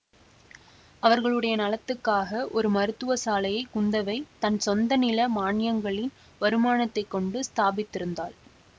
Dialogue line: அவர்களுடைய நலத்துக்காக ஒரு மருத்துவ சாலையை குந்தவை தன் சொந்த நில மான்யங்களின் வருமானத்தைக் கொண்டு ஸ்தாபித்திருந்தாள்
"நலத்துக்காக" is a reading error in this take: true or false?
false